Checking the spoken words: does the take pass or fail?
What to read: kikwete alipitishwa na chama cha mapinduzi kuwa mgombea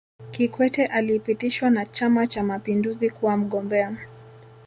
pass